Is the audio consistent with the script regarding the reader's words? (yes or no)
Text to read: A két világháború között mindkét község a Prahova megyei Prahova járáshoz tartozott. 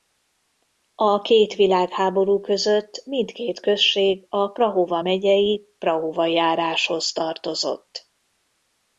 yes